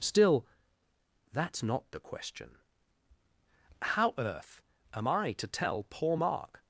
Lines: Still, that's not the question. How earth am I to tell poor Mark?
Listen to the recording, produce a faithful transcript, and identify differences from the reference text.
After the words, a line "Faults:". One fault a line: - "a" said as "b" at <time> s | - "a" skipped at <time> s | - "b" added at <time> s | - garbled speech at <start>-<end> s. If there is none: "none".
Still, that's not the question. How earth am I to tell poor Mark?
Faults:
none